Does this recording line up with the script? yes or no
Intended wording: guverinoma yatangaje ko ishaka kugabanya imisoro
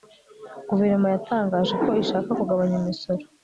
yes